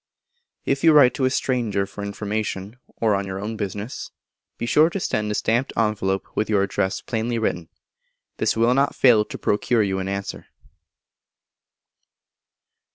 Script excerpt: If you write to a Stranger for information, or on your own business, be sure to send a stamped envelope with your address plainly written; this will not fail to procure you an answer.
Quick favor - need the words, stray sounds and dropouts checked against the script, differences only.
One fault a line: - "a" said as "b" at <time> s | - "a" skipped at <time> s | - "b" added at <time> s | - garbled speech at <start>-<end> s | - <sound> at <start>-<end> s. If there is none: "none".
none